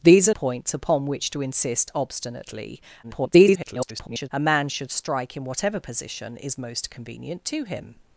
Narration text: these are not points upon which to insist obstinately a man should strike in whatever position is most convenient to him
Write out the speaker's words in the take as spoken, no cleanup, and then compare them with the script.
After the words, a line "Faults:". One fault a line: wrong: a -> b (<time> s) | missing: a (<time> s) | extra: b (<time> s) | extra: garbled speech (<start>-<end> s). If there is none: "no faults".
these are points upon which to insist obstinately [garbled] a man should strike in whatever position is most convenient to him
Faults:
missing: not (0.3 s)
extra: garbled speech (3.0-4.3 s)